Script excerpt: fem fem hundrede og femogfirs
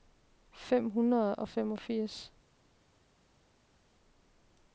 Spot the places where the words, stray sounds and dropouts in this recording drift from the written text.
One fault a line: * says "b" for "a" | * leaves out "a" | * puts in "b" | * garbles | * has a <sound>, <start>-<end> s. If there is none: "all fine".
* leaves out "fem"